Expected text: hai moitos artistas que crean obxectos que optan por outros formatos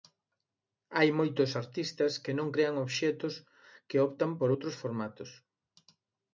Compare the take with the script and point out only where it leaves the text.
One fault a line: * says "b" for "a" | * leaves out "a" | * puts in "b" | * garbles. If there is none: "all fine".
* puts in "non"